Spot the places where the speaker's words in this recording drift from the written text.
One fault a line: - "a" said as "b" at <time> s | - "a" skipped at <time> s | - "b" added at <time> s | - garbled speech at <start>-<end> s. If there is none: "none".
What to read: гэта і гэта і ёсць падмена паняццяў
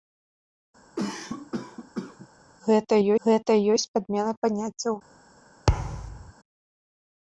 none